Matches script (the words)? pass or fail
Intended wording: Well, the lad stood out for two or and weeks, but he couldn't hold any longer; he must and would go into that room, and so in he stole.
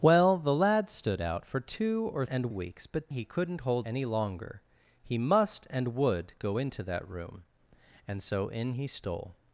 pass